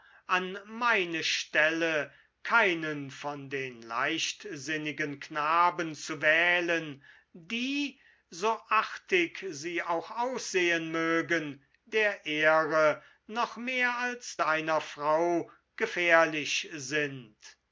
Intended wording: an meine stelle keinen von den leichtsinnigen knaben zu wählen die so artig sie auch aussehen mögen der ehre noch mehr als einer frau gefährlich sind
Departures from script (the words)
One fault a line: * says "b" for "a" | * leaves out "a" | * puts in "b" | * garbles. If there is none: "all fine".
all fine